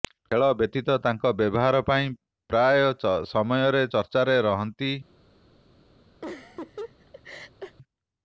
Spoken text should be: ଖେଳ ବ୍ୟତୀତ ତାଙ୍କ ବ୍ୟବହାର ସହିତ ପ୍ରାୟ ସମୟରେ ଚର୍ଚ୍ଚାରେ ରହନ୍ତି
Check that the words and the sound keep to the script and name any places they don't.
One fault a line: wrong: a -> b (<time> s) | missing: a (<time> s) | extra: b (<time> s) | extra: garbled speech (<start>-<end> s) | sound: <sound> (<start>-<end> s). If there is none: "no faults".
wrong: ସହିତ -> ପାଇଁ (1.9 s)
sound: laugh (6.2-7.8 s)